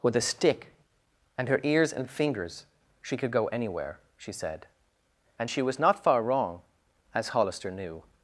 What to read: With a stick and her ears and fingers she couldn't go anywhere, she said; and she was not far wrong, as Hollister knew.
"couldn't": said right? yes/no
no